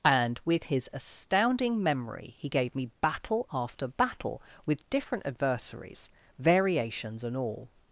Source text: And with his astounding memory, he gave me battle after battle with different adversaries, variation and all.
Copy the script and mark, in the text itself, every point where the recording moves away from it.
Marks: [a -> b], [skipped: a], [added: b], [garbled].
And with his astounding memory, he gave me battle after battle with different adversaries, [variation -> variations] and all.